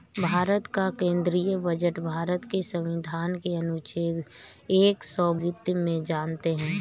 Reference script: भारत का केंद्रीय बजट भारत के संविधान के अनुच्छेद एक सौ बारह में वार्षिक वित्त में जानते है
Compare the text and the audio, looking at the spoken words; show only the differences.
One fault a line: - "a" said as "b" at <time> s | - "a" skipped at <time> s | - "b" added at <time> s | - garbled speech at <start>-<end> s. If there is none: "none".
- "बारह में वार्षिक" skipped at 5.3 s